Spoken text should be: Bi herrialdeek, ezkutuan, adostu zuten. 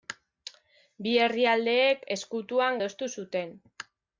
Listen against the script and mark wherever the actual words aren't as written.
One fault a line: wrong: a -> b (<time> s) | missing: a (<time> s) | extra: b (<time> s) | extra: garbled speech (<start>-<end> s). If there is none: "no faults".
no faults